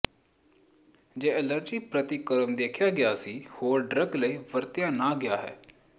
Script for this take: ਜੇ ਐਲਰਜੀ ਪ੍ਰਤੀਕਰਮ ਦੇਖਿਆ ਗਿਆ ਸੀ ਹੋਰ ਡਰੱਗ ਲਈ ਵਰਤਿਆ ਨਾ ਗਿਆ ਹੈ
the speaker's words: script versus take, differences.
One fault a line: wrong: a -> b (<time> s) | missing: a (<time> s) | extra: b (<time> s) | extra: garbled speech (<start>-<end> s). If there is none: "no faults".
no faults